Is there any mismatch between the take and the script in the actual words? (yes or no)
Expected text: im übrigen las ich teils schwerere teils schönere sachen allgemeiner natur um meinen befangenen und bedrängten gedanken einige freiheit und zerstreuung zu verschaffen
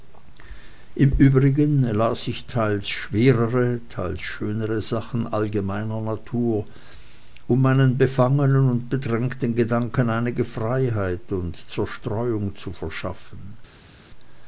no